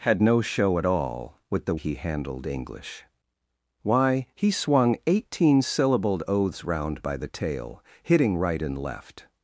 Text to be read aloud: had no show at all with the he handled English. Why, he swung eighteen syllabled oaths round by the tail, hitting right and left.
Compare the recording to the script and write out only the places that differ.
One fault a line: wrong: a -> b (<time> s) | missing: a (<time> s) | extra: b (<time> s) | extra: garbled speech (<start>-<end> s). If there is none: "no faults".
no faults